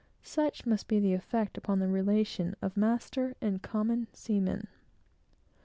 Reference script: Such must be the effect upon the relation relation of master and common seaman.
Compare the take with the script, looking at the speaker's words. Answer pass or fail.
fail